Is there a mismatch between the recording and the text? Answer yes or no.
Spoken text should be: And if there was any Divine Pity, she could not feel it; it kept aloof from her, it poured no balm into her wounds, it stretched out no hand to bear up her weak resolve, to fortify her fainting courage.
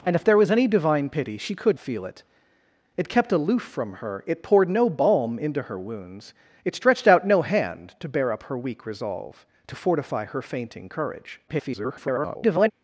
yes